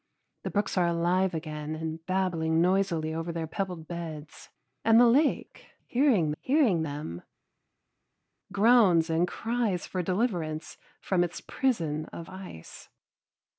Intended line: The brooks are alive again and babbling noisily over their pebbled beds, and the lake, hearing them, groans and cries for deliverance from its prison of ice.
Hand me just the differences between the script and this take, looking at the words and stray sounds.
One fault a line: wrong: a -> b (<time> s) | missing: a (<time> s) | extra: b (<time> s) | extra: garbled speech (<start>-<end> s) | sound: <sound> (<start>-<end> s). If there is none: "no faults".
extra: hearing (6.4 s)